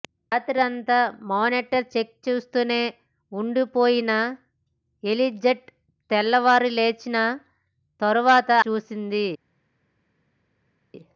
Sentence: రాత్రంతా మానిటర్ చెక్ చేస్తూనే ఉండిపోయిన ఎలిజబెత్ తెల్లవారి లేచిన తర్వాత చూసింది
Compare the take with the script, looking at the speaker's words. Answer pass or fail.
pass